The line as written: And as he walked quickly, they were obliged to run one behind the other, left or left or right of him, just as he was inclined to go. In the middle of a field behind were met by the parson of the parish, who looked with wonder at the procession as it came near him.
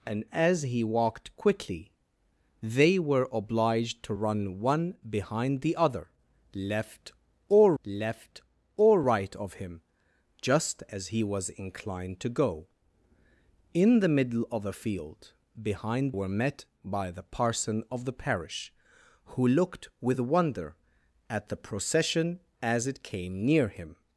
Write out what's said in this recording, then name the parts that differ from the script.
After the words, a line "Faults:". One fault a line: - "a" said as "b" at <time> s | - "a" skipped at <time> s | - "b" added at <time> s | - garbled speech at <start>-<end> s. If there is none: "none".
And as he walked quickly, they were obliged to run one behind the other, left or left or right of him, just as he was inclined to go. In the middle of a field behind were met by the parson of the parish, who looked with wonder at the procession as it came near him.
Faults:
none